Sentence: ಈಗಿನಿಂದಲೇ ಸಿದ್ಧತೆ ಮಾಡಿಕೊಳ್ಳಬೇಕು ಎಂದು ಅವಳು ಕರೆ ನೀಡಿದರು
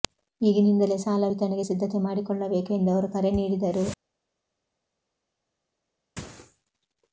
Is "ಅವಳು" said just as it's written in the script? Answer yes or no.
no